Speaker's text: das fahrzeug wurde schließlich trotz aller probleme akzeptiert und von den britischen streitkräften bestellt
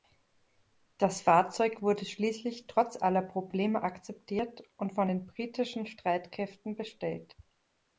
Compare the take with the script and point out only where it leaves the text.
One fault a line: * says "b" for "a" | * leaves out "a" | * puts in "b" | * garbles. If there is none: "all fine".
all fine